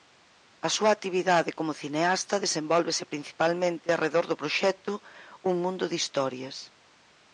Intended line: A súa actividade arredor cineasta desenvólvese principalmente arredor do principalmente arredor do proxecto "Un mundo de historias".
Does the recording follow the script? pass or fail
fail